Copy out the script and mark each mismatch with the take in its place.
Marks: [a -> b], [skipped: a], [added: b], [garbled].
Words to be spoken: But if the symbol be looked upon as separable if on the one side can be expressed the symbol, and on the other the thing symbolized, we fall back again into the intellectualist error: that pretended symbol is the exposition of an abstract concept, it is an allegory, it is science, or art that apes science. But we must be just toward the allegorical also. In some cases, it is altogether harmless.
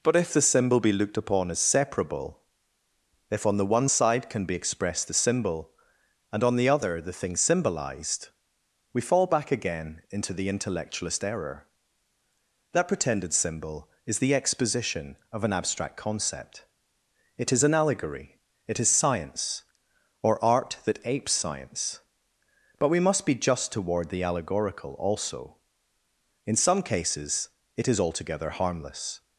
But if the symbol be looked upon as separable if on the one side can be expressed the symbol, and on the other the thing symbolized, we fall back again into the intellectualist error: that pretended symbol is the exposition of an abstract concept, it is an allegory, it is science, or art that apes science. But we must be just toward the allegorical also. In some cases, it is altogether harmless.